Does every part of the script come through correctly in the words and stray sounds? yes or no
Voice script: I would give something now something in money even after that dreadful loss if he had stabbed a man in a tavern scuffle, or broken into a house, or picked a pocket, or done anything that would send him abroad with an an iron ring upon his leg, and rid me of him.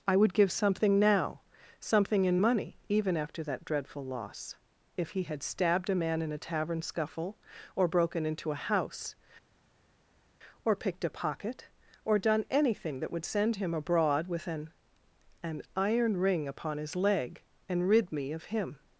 yes